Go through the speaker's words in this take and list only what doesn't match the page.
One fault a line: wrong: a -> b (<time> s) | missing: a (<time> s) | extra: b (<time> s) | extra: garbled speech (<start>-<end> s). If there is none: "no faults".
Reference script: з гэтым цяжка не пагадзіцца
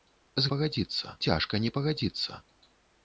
wrong: гэтым -> пагадзіцца (0.5 s)